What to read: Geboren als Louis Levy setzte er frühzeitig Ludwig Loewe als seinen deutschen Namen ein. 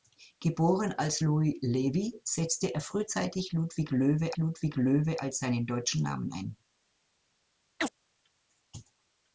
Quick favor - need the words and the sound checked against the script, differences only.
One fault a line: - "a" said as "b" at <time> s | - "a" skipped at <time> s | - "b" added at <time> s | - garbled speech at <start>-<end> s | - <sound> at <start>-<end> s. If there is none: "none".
- "Ludwig Loewe" added at 4.3 s
- chirp at 7.8-7.9 s